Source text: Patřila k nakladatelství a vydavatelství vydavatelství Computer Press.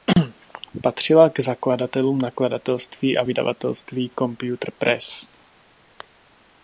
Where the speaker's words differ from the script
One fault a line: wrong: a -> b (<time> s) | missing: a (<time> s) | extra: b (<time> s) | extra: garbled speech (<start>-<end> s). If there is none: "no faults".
extra: zakladatelům (1.4 s)
missing: vydavatelství (4.1 s)